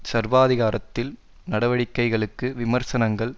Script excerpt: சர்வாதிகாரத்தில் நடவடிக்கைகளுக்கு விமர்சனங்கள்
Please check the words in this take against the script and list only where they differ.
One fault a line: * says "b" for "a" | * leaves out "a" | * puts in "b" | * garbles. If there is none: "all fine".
all fine